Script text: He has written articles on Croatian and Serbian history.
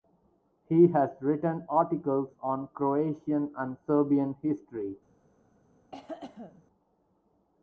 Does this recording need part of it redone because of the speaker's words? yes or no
no